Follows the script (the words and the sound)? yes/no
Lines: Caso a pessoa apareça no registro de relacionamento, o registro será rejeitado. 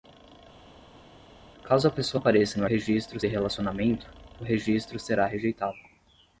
yes